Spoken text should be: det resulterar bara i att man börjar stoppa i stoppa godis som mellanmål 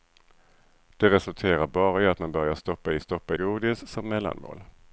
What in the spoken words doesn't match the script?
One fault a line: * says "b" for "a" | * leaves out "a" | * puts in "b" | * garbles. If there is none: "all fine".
all fine